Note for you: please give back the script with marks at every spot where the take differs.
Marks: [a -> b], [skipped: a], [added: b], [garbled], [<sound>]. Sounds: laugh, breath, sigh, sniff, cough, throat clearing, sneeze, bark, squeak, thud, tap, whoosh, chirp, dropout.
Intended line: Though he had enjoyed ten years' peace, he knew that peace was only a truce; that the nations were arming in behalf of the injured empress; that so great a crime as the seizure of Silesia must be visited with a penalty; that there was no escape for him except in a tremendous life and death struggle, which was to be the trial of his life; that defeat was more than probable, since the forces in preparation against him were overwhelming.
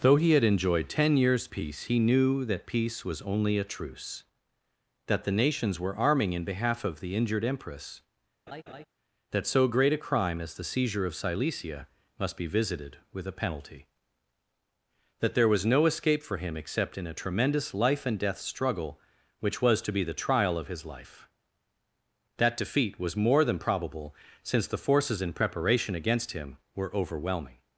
Though he had enjoyed ten years' peace, he knew that peace was only a truce; that the nations were arming in behalf of the injured empress; [laugh] that so great a crime as the seizure of Silesia must be visited with a penalty; that there was no escape for him except in a tremendous life and death struggle, which was to be the trial of his life; that defeat was more than probable, since the forces in preparation against him were overwhelming.